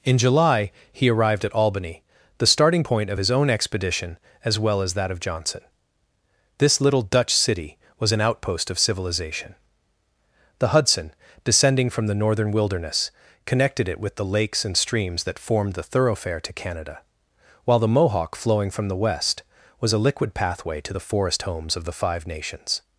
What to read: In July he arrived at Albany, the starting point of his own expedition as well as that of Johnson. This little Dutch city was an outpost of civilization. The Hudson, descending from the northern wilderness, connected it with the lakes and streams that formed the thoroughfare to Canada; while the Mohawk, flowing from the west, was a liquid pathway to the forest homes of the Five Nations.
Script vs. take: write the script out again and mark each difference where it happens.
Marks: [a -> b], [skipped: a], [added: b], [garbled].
In July he arrived at Albany, the starting point of his own expedition as well as that of Johnson. This little Dutch city was an outpost of civilization. The Hudson, descending from the northern wilderness, connected it with the lakes and streams that formed the thoroughfare to Canada; while the Mohawk, flowing from the west, was a liquid pathway to the forest homes of the Five Nations.